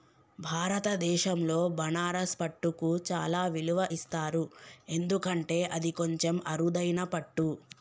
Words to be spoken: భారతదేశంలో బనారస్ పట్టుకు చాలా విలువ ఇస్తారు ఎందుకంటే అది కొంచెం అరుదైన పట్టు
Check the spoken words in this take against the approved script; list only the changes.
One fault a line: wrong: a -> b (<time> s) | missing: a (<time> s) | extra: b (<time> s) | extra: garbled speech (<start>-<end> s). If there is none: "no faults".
no faults